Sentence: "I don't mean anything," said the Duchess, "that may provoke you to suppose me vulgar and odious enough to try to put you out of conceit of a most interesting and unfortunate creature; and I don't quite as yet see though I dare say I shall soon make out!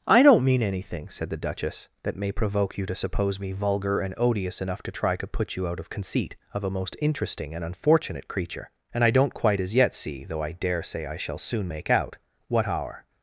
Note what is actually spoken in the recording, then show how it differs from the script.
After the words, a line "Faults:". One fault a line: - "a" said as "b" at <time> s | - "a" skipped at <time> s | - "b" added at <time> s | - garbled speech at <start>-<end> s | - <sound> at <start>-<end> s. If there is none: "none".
"I don't mean anything," said the Duchess, "that may provoke you to suppose me vulgar and odious enough to try to put you out of conceit of a most interesting and unfortunate creature; and I don't quite as yet see though I dare say I shall soon make out! what our
Faults:
- "what our" added at 12.5 s